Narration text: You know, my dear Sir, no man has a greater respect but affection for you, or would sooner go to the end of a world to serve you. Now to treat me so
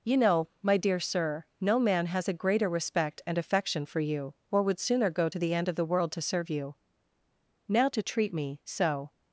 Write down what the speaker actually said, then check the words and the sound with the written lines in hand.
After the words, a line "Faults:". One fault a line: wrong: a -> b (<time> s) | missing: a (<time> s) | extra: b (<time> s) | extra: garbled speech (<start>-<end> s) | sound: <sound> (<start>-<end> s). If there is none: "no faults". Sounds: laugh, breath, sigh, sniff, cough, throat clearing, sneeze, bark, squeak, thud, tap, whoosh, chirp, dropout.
You know, my dear Sir, no man has a greater respect and affection for you, or would sooner go to the end of the world to serve you. Now to treat me so
Faults:
wrong: but -> and (3.3 s)
wrong: a -> the (5.7 s)